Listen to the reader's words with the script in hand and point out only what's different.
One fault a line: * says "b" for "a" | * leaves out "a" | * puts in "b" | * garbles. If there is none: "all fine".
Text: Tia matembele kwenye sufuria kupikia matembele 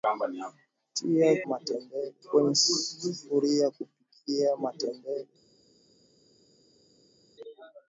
all fine